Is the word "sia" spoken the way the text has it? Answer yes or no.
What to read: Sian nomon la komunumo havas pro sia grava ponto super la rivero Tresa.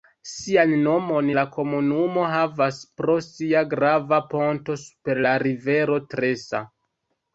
yes